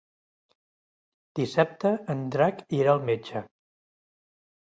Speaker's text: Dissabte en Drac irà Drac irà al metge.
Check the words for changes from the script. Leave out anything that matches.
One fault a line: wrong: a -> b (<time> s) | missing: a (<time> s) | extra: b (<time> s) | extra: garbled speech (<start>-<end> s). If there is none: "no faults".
missing: Drac irà (2.9 s)